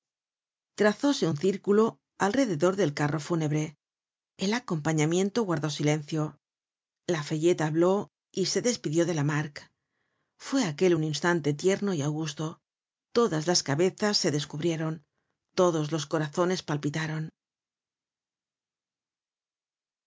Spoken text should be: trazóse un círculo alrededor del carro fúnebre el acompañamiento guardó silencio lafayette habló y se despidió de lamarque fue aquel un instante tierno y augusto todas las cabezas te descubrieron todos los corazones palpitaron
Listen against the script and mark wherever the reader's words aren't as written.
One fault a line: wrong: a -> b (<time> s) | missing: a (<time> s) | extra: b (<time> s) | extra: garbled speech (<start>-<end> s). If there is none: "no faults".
wrong: te -> se (14.2 s)